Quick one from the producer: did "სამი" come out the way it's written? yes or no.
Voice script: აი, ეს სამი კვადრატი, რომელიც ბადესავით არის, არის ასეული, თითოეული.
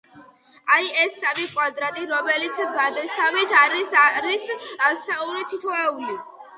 yes